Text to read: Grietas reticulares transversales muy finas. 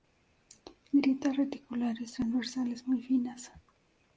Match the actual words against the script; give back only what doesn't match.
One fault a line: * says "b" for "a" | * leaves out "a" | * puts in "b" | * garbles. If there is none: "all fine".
all fine